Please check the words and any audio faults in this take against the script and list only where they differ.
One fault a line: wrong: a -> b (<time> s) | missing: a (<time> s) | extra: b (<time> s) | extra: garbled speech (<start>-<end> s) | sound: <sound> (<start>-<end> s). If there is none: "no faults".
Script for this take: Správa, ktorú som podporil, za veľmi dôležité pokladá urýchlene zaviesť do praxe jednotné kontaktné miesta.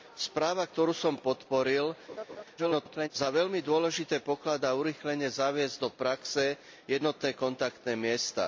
sound: laugh (2.1-2.4 s)
extra: garbled speech (2.6-3.1 s)